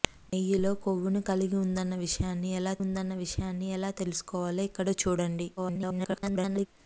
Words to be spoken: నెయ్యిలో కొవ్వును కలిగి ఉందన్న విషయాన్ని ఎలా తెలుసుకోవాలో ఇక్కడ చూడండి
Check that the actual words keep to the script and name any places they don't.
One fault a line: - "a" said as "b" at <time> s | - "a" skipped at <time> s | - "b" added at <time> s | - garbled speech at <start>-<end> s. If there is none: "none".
- "ఉందన్న విషయాన్ని ఎలా" added at 2.8 s
- garbled speech at 5.6-6.7 s